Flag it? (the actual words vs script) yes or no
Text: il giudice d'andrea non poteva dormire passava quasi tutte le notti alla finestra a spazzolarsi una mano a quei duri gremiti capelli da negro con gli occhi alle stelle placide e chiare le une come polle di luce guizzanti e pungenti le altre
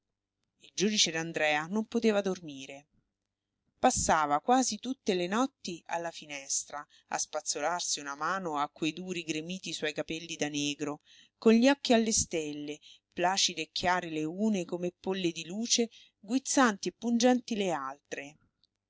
yes